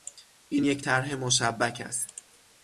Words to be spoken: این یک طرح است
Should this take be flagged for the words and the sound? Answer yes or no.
yes